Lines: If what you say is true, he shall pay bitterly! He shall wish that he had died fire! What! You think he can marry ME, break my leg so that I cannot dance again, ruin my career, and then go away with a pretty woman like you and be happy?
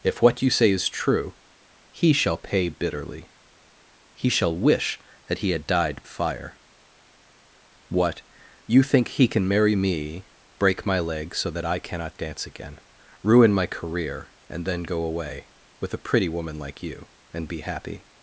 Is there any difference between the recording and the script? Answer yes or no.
no